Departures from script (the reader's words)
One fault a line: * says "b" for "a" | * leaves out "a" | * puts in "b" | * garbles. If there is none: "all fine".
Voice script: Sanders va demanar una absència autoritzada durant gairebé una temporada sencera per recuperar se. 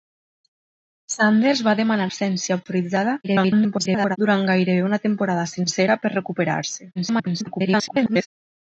* leaves out "una"
* garbles
* garbles